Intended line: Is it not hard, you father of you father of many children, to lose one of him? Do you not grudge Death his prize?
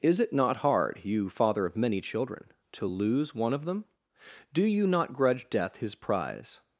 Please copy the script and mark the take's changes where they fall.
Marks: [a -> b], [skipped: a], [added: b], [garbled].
Is it not hard, you father of [skipped: you father of] many children, to lose one of [him? -> them] Do you not grudge Death his prize?